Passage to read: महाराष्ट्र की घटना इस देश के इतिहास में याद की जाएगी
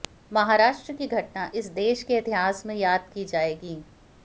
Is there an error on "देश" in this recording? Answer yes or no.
no